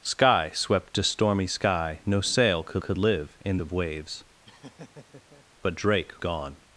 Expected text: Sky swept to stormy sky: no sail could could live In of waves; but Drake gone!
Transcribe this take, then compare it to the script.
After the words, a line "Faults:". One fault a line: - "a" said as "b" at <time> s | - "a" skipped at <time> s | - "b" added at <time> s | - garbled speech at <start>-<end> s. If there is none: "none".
Sky swept to stormy sky: no sail could could live In of waves; but Drake gone!
Faults:
none